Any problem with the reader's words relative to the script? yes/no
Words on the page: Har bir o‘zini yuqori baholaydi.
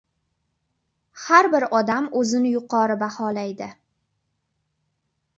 yes